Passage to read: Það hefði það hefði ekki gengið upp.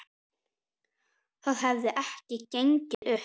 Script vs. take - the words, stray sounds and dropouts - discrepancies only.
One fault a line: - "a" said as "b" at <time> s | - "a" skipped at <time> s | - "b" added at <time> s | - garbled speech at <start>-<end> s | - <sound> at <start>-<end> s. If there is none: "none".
- "það hefði" skipped at 1.9 s
- dropout at 2.9-3.0 s